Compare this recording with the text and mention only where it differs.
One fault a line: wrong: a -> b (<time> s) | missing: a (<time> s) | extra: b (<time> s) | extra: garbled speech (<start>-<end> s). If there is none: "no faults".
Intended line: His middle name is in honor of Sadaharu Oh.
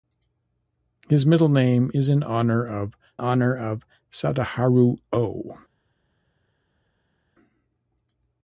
extra: honor of (3.2 s)